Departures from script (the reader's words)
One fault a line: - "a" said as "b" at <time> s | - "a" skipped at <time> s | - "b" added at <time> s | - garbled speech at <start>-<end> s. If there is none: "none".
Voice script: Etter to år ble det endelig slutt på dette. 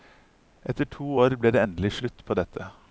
none